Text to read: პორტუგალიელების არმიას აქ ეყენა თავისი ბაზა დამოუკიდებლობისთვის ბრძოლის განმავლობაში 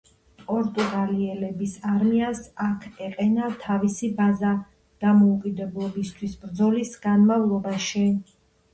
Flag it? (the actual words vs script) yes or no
no